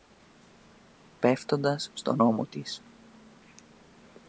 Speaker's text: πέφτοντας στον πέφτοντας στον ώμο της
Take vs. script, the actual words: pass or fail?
fail